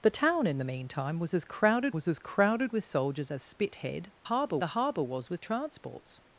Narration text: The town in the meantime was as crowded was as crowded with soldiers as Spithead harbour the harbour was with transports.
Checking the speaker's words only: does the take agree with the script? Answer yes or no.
yes